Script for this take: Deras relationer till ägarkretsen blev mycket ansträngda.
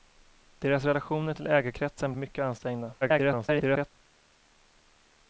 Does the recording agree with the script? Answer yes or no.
no